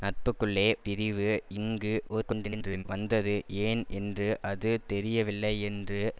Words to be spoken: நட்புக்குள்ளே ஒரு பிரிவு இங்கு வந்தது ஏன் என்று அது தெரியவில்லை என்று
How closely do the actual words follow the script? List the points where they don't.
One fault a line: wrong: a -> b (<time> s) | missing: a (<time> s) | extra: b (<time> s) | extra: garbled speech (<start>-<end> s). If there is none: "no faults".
missing: ஒரு (0.7 s)
extra: garbled speech (2.1-2.8 s)